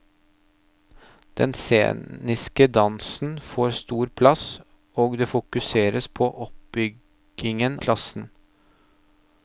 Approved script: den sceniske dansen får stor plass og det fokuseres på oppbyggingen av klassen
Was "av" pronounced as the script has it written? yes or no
no